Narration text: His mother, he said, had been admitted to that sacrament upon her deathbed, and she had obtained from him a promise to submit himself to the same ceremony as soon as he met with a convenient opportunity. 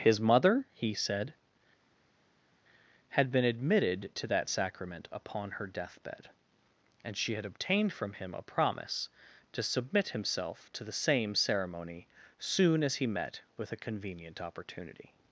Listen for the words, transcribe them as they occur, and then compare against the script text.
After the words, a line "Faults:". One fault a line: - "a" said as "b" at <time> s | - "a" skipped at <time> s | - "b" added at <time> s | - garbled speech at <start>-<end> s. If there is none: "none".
His mother, he said, had been admitted to that sacrament upon her deathbed, and she had obtained from him a promise to submit himself to the same ceremony soon as he met with a convenient opportunity.
Faults:
- "as" skipped at 12.1 s